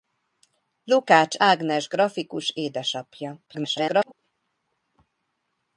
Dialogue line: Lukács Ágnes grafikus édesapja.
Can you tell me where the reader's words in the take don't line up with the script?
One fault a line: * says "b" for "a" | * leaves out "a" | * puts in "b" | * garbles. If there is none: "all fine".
* garbles